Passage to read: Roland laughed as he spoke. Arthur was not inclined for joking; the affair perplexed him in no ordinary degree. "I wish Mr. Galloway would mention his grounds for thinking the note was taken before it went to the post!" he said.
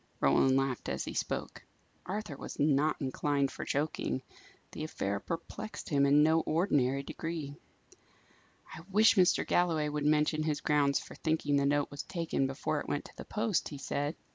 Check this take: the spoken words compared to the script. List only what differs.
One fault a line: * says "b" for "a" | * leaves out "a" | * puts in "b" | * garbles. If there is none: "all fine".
all fine